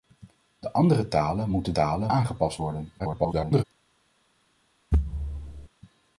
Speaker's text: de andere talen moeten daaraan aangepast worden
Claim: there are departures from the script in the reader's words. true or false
true